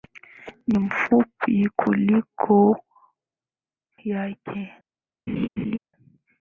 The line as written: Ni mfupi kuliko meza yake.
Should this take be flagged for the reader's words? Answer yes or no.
yes